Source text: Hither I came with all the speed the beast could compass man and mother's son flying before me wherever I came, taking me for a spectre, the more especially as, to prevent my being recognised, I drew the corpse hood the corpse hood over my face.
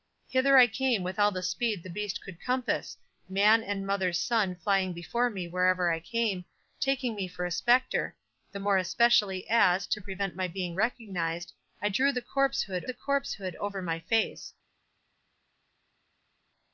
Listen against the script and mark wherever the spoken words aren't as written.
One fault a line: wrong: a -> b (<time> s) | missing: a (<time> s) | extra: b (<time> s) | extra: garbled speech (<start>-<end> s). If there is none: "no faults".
no faults